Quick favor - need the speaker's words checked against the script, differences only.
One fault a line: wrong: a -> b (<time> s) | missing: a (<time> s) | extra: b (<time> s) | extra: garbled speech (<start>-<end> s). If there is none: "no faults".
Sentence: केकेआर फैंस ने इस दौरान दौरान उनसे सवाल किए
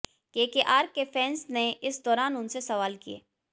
extra: के (0.9 s)
missing: दौरान (2.4 s)